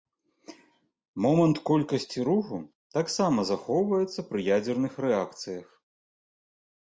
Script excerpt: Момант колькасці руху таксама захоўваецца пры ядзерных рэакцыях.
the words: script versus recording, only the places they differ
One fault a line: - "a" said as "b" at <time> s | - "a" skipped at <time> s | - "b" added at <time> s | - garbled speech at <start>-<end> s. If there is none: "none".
none